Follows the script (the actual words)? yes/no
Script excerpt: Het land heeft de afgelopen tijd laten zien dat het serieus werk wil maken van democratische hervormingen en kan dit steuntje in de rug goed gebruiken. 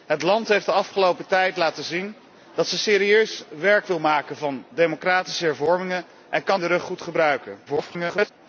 no